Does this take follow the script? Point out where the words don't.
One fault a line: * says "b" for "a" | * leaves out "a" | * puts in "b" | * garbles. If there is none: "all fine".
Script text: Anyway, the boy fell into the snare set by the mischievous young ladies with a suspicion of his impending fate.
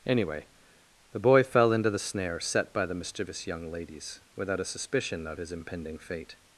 * says "without" for "with"